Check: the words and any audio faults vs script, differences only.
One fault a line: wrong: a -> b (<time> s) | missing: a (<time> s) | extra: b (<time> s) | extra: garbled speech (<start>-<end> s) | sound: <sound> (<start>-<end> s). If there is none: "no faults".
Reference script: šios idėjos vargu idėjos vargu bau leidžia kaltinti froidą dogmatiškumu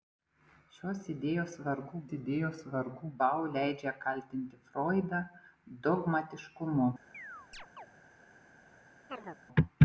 sound: chirp (7.1-7.9 s)
sound: chirp (9.1-9.4 s)